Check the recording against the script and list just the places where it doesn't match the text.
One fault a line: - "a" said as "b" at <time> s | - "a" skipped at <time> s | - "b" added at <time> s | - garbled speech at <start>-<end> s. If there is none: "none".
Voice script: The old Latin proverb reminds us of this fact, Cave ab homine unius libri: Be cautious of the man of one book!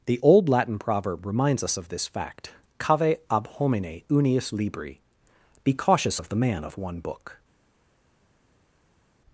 none